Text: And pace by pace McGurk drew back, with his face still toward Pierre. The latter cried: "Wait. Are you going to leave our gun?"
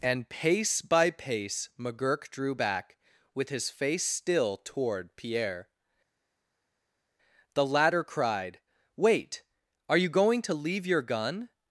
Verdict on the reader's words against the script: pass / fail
fail